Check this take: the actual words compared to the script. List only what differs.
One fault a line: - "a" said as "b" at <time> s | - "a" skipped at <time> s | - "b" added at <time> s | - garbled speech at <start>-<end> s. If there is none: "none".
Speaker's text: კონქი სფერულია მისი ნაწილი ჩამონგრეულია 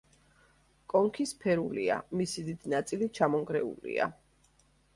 - "დიდი" added at 2.5 s